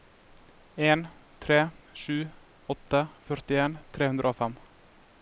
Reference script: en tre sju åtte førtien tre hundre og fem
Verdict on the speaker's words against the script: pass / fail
pass